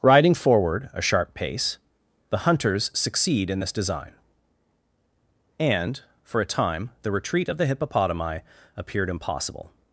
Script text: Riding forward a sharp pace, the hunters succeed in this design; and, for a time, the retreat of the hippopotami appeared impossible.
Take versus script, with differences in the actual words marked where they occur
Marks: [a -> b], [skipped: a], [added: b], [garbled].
Riding forward a sharp pace, the hunters succeed in this design; and, for a time, the retreat of the hippopotami appeared impossible.